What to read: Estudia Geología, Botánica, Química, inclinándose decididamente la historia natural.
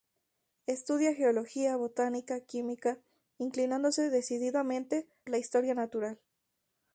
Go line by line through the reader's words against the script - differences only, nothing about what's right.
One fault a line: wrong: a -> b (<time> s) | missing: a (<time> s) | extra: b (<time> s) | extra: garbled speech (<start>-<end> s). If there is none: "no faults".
no faults